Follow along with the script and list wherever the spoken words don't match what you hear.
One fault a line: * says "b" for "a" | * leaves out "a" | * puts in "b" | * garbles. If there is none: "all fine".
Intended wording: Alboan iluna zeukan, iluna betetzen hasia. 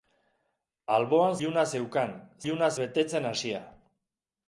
all fine